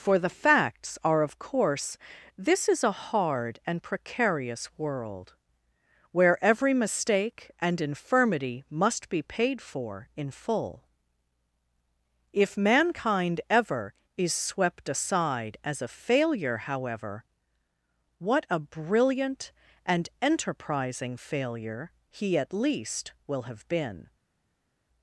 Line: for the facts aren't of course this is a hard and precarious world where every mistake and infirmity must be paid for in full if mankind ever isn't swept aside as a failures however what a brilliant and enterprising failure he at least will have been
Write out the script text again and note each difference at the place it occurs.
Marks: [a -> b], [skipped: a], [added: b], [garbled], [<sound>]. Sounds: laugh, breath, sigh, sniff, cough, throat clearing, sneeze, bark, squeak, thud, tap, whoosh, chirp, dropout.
for the facts [aren't -> are] of course this is a hard and precarious world where every mistake and infirmity must be paid for in full if mankind ever [isn't -> is] swept aside as a [failures -> failure] however what a brilliant and enterprising failure he at least will have been